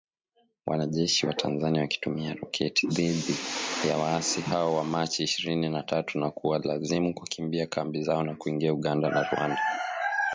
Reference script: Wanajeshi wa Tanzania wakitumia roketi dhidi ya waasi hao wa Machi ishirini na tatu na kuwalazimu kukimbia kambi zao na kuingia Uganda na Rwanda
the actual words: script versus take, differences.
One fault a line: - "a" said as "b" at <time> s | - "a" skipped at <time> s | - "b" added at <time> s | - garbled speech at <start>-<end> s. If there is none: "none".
none